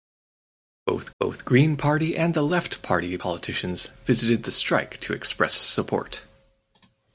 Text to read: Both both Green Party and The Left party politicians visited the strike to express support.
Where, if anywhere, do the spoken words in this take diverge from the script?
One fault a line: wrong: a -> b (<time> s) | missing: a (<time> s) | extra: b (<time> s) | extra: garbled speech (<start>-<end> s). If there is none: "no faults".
no faults